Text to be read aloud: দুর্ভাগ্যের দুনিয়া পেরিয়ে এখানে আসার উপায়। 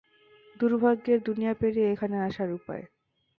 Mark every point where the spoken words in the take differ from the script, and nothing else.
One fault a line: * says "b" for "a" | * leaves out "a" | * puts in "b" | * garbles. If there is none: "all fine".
all fine